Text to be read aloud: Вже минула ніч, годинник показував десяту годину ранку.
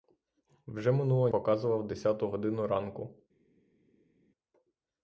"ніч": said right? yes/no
no